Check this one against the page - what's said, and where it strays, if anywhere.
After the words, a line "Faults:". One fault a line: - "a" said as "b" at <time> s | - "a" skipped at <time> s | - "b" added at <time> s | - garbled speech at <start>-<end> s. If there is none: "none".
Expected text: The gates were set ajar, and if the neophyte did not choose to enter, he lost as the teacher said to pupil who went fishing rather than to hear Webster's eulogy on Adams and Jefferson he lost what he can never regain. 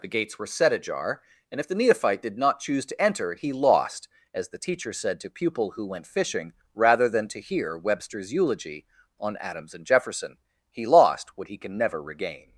The gates were set ajar, and if the neophyte did not choose to enter, he lost as the teacher said to pupil who went fishing rather than to hear Webster's eulogy on Adams and Jefferson he lost what he can never regain.
Faults:
none